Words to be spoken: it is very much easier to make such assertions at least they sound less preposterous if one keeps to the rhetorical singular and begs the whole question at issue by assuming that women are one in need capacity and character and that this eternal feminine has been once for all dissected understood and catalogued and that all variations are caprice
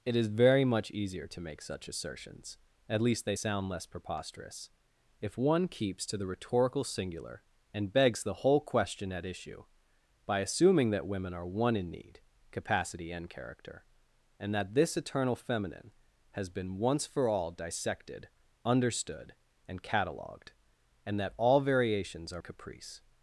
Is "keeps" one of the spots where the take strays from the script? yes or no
no